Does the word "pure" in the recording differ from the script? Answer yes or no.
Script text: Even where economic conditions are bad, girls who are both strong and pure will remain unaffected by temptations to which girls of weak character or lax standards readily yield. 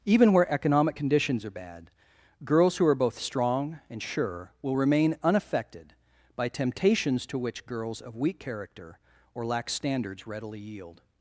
yes